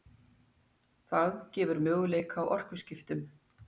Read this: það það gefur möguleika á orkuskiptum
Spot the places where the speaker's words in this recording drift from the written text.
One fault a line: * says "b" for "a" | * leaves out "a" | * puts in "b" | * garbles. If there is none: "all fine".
* leaves out "það"